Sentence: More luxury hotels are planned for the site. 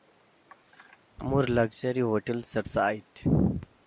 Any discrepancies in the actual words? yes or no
yes